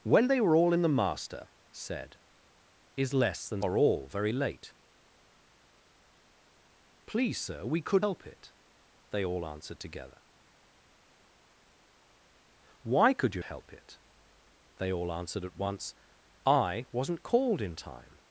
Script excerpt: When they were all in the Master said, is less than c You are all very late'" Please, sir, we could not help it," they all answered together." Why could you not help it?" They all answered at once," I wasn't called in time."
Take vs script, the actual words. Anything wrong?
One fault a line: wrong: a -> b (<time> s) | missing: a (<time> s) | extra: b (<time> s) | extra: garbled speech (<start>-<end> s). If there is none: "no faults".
missing: c You (3.6 s)
missing: not (8.0 s)
missing: not (13.4 s)